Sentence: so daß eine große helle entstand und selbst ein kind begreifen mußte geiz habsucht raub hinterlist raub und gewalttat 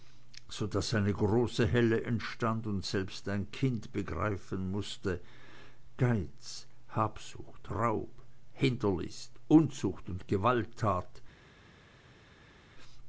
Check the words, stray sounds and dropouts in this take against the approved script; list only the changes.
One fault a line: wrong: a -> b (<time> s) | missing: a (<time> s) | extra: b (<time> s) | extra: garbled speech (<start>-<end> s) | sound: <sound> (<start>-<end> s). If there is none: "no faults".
wrong: raub -> unzucht (9.5 s)